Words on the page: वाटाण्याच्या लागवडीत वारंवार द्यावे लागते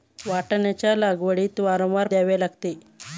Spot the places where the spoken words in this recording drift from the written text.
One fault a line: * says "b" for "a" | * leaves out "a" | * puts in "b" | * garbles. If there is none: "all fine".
all fine